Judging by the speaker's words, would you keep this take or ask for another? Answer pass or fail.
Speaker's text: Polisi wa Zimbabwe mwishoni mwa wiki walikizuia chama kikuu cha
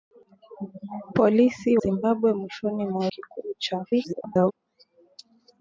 fail